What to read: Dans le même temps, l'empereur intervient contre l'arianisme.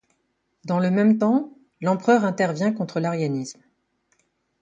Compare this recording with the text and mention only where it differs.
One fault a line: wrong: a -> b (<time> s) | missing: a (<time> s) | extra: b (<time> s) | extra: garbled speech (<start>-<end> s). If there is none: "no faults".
no faults